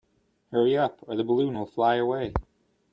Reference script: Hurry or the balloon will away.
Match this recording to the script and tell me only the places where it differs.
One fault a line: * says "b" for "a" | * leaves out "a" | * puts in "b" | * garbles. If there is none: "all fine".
* puts in "up"
* puts in "fly"